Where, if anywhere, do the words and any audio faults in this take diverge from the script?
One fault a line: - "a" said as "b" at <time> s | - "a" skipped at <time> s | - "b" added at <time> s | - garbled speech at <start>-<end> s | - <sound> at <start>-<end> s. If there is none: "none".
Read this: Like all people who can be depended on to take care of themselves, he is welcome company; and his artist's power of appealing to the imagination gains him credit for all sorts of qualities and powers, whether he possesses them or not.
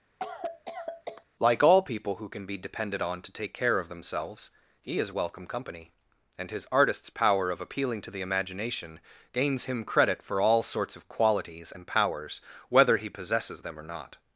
- cough at 0.2-1.2 s